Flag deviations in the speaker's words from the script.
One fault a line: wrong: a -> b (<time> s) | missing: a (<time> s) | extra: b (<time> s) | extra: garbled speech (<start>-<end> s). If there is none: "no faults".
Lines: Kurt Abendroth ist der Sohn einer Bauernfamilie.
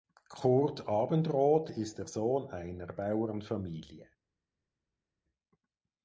no faults